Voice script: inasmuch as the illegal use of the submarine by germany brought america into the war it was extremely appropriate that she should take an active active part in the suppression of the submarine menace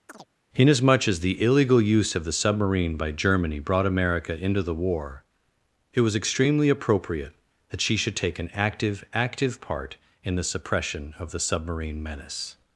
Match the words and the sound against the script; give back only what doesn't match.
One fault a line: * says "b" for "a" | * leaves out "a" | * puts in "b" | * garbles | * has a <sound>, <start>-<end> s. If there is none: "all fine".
* has a chirp, 0.1-0.3 s